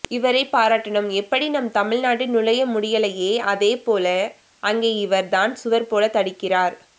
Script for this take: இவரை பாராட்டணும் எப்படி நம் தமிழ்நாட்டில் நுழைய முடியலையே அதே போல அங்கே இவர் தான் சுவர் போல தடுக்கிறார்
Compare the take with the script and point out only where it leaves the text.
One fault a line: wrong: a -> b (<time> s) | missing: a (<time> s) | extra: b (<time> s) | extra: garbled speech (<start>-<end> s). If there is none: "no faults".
no faults